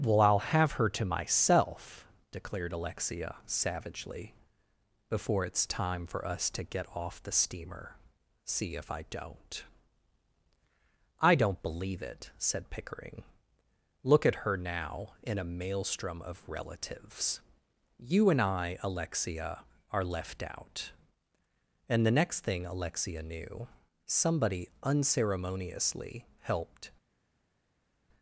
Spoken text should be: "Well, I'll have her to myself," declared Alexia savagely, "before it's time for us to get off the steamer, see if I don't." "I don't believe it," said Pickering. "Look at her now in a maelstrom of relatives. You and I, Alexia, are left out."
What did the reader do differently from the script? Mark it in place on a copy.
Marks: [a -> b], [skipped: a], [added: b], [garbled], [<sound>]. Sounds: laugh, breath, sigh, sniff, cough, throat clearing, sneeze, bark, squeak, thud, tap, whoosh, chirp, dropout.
"Well, I'll have her to myself," declared Alexia savagely, "before it's time for us to get off the steamer, see if I don't." "I don't believe it," said Pickering. "Look at her now in a maelstrom of relatives. You and I, Alexia, are left out." [added: And the next thing Alexia knew somebody unceremoniously helped]